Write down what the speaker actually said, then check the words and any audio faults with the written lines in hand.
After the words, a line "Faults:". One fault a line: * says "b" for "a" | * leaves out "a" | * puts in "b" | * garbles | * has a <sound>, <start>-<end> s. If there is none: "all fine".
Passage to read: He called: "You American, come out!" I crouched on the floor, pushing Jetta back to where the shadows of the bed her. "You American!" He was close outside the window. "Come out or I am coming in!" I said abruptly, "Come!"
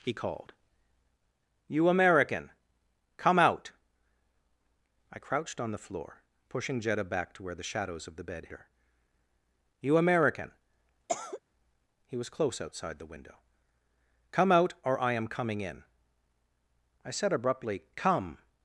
He called: "You American, come out!" I crouched on the floor, pushing Jetta back to where the shadows of the bed her. "You American!" He was close outside the window. "Come out or I am coming in!" I said abruptly, "Come!"
Faults:
* has a cough, 11.1-11.4 s